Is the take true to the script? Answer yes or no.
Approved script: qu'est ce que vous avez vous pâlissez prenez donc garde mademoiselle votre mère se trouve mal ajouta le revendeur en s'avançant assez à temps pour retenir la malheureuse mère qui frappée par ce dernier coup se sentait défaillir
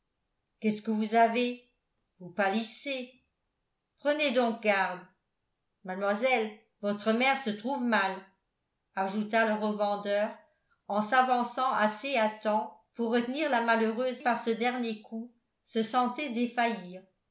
no